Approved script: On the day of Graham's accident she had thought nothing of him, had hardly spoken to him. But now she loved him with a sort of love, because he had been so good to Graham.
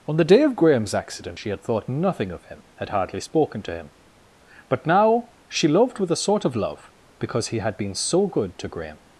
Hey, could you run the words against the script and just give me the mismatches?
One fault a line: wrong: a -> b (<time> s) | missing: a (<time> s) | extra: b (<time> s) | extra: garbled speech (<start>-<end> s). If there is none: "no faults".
missing: him (6.0 s)